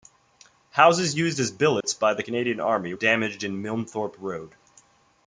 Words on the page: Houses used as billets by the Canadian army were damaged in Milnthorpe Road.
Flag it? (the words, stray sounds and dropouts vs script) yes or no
yes